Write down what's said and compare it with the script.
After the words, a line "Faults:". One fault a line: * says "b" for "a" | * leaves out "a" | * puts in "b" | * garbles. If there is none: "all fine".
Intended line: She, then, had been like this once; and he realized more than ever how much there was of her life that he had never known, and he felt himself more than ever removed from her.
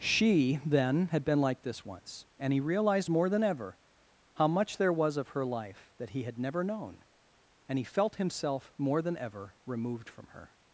She, then, had been like this once; and he realized more than ever how much there was of her life that he had never known, and he felt himself more than ever removed from her.
Faults:
all fine